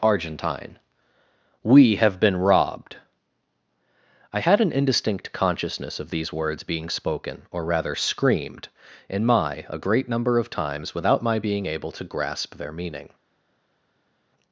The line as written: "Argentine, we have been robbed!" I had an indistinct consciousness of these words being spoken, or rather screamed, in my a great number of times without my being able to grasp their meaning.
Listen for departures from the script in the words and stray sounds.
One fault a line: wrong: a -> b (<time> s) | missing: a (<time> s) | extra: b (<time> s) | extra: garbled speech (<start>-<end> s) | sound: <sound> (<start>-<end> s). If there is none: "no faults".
no faults